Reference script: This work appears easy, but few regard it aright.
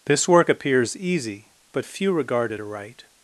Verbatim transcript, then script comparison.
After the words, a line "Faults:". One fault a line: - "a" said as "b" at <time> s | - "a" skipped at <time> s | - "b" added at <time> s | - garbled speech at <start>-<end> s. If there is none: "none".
This work appears easy, but few regard it aright.
Faults:
none